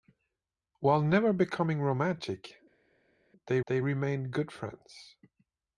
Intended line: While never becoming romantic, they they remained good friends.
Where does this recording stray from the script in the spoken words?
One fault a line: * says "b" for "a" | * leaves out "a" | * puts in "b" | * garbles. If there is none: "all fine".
all fine